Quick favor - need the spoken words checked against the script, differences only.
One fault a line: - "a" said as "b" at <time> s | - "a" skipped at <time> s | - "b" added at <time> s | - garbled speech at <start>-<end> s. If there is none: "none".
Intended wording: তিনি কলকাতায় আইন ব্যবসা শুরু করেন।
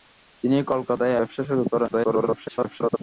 - "আইন" skipped at 1.1 s
- garbled speech at 1.9-3.0 s